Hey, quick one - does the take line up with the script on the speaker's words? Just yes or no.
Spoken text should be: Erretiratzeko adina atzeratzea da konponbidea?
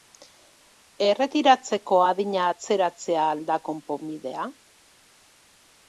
no